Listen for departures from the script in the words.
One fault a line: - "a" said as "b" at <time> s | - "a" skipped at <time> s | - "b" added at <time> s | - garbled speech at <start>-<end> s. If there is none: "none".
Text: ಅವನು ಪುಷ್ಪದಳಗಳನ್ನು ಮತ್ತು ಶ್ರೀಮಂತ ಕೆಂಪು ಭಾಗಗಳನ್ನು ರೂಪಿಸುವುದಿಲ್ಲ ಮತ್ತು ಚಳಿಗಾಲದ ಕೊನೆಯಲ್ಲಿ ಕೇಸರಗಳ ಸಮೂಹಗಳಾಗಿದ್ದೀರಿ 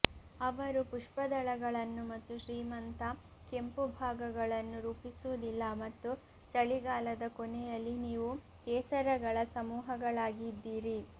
- "ಅವನು" said as "ಅವರು" at 0.4 s
- "ನೀವು" added at 8.0 s